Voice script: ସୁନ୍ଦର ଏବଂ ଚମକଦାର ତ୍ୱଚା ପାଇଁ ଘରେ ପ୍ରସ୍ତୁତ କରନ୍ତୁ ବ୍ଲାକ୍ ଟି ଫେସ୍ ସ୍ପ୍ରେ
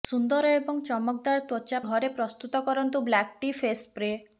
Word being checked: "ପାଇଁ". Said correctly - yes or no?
no